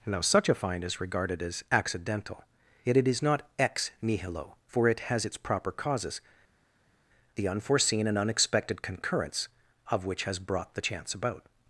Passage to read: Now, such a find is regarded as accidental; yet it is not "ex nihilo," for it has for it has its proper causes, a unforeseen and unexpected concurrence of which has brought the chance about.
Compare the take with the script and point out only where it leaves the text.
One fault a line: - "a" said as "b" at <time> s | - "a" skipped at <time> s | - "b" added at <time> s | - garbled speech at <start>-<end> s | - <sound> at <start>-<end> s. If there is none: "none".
- "for it has" skipped at 5.2 s
- "a" said as "the" at 7.3 s